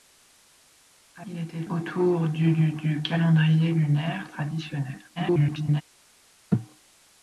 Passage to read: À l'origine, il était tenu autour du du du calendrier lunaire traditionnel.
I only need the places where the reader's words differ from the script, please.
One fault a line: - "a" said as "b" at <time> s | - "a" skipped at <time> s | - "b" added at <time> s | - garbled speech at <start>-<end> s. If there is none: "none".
- "l'origine" skipped at 1.2 s
- "tenu" skipped at 1.7 s
- garbled speech at 5.2-5.8 s